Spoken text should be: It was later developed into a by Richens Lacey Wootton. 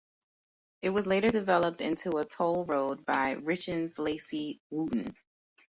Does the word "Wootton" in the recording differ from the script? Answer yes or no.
no